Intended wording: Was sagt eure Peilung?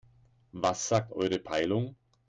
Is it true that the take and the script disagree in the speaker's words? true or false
false